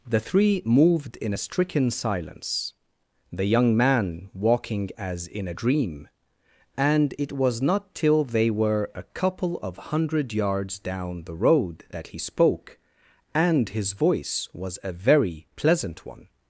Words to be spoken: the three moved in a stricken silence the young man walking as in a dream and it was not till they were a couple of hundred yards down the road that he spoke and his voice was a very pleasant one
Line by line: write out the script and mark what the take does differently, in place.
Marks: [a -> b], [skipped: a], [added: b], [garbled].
the three moved in a stricken silence the young man walking as in a dream and it was not till they were a couple of hundred yards down the road that he spoke and his voice was a very pleasant one